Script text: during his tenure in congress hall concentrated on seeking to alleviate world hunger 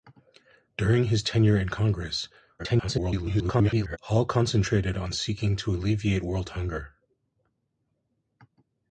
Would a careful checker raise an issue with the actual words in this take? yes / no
yes